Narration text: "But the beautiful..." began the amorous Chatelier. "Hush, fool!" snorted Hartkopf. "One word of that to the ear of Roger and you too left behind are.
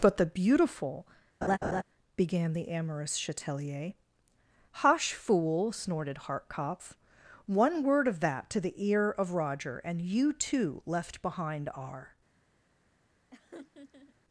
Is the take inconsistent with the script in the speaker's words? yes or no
no